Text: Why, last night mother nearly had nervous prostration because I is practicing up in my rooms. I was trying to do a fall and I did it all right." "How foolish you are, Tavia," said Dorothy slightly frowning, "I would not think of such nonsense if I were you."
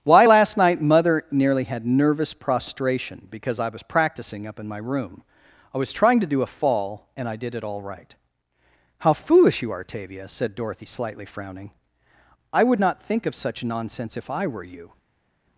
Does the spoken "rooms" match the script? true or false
false